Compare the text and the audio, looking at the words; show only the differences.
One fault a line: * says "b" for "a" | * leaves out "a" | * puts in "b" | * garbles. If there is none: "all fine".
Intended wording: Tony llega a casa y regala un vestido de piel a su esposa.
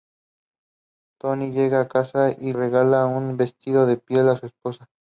all fine